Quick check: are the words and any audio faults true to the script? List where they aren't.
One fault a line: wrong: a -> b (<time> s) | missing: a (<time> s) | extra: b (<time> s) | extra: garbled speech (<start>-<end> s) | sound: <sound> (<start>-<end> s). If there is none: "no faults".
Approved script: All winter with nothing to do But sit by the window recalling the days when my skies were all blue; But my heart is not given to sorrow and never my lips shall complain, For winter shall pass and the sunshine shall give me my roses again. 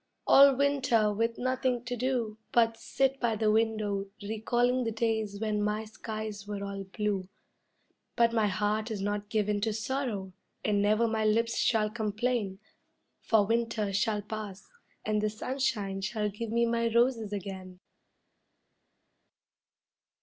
no faults